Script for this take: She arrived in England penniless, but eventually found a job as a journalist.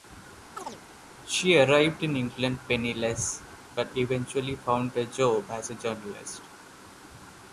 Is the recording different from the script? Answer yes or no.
no